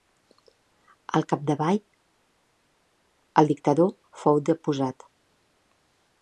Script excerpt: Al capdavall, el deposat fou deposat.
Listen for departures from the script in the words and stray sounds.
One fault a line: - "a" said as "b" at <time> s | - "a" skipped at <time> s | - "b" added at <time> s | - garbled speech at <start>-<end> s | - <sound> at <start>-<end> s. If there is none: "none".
- "deposat" said as "dictador" at 3.5 s